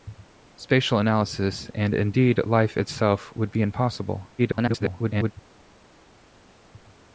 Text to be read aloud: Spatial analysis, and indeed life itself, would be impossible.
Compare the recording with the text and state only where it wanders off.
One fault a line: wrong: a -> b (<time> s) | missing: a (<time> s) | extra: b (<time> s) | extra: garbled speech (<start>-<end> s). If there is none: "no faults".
extra: garbled speech (4.4-5.3 s)